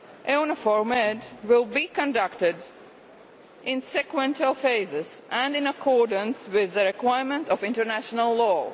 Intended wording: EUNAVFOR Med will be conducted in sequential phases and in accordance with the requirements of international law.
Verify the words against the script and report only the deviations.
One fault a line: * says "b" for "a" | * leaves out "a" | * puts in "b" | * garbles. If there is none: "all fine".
all fine